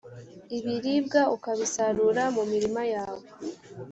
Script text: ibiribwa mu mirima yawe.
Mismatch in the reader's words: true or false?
true